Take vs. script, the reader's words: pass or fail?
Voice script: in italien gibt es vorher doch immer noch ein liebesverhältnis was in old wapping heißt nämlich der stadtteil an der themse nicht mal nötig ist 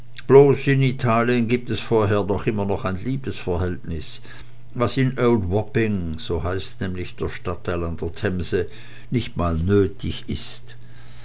fail